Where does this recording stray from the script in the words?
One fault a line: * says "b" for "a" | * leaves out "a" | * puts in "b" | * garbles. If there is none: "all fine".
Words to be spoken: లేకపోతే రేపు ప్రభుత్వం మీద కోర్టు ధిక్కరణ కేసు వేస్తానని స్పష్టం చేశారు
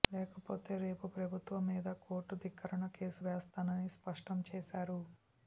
all fine